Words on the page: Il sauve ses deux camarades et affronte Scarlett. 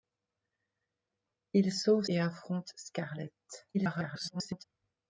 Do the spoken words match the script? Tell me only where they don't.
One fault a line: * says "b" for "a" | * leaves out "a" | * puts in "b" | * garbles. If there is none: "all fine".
* leaves out "ses deux camarades"
* garbles